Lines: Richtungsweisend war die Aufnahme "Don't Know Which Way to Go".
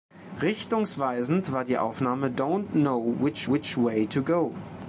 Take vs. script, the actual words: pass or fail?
fail